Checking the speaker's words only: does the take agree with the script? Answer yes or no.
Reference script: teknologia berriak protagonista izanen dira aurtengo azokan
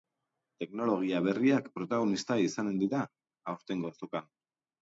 yes